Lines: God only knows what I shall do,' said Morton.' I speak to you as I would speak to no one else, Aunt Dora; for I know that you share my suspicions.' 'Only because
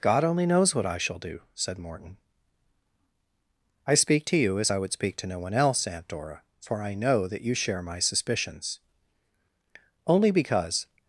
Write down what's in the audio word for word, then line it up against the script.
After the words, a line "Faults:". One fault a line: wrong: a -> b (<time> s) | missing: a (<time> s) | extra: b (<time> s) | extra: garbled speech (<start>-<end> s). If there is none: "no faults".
God only knows what I shall do,' said Morton.' I speak to you as I would speak to no one else, Aunt Dora; for I know that you share my suspicions.' 'Only because
Faults:
no faults